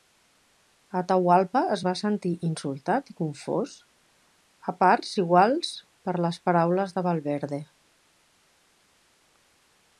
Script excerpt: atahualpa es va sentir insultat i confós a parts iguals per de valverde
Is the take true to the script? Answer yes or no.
no